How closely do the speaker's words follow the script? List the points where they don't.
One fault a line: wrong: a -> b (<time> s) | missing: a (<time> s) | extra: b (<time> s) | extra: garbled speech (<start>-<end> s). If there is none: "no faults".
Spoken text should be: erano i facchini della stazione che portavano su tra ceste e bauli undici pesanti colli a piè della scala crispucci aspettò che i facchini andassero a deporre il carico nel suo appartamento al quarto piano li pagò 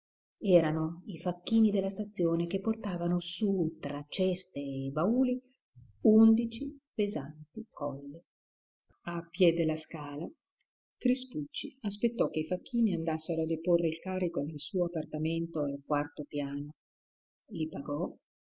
no faults